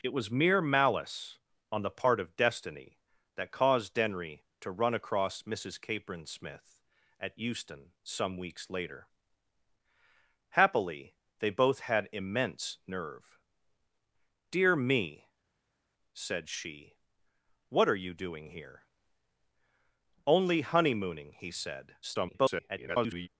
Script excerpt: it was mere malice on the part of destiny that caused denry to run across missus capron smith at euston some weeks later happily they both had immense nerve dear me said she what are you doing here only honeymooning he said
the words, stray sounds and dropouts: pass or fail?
fail